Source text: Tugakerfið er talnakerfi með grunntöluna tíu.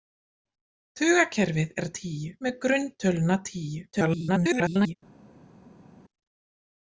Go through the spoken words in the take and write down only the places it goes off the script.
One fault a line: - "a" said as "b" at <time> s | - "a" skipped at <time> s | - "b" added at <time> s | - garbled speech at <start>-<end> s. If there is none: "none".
- "talnakerfi" said as "tíu" at 2.0 s
- garbled speech at 3.9-5.0 s